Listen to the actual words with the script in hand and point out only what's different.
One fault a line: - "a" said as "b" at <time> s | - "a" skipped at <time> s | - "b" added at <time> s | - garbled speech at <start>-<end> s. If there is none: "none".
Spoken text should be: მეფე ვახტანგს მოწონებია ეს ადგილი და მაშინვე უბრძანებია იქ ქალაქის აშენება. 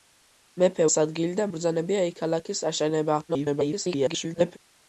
- "ვახტანგს მოწონებია" skipped at 0.9 s
- "მაშინვე" skipped at 1.5 s
- garbled speech at 3.3-4.6 s